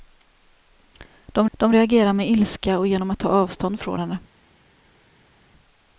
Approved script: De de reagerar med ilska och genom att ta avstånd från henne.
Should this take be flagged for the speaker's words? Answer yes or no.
no